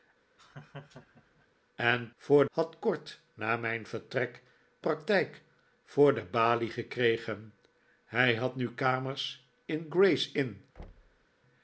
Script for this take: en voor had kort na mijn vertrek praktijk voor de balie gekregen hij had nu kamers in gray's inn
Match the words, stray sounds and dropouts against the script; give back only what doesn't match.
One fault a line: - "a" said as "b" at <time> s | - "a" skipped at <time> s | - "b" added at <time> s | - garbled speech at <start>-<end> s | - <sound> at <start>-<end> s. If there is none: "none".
- laugh at 0.4-1.5 s
- thud at 10.8-11.3 s